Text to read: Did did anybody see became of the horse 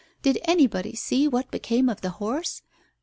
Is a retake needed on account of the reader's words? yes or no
yes